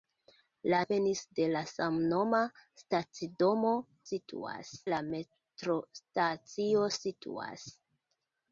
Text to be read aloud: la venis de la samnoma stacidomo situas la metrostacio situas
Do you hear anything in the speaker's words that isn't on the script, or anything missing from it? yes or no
no